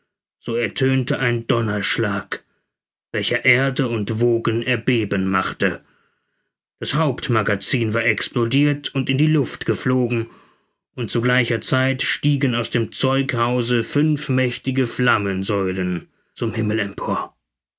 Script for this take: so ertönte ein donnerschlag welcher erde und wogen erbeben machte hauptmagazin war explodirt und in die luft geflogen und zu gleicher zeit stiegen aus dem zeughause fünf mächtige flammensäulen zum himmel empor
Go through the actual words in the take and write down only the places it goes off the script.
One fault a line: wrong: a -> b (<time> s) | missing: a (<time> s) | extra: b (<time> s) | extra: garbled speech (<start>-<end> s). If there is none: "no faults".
extra: das (6.8 s)